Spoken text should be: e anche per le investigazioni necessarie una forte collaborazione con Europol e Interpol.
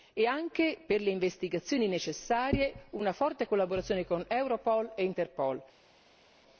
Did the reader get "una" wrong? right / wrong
right